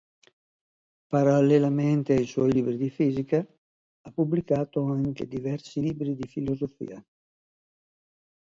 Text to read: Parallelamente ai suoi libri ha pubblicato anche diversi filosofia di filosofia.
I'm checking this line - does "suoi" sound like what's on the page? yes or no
yes